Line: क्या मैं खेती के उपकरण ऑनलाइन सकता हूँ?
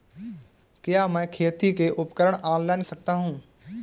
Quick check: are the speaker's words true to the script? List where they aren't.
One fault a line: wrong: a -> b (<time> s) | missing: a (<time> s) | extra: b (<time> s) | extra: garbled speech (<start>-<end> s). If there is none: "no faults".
no faults